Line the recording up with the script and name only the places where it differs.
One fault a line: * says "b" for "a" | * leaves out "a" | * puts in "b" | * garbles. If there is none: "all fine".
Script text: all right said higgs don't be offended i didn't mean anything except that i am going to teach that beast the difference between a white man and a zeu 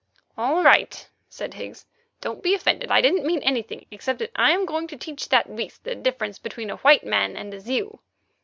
all fine